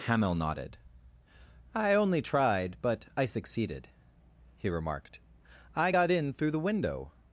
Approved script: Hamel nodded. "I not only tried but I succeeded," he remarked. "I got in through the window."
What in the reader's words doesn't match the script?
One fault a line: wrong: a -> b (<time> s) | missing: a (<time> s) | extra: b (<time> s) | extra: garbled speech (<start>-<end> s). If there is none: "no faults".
missing: not (1.9 s)